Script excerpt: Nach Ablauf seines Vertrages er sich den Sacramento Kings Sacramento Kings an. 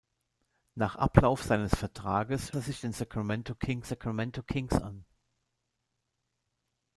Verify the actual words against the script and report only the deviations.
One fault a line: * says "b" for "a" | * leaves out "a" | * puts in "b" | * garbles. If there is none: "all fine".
all fine